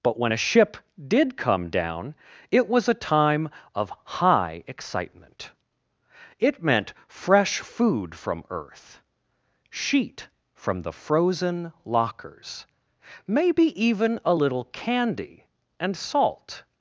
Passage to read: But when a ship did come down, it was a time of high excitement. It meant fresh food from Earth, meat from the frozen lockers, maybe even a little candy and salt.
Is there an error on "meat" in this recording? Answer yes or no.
yes